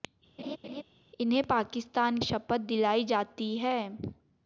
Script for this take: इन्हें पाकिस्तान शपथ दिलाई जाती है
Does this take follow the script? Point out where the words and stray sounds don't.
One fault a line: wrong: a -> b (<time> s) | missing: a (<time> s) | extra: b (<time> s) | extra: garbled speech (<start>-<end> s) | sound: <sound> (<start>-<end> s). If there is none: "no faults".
sound: laugh (0.4-0.8 s)